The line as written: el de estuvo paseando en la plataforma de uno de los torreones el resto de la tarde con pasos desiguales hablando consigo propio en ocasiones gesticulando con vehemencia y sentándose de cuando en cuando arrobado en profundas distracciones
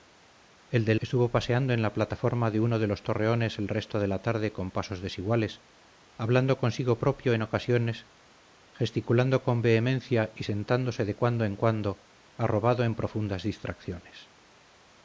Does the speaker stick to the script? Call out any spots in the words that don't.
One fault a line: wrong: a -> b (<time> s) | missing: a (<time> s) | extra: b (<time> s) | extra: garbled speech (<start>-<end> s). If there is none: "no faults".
no faults